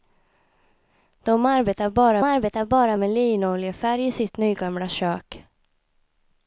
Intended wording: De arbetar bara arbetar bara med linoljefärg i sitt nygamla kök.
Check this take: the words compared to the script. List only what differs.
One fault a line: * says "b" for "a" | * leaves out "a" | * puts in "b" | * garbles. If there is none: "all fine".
all fine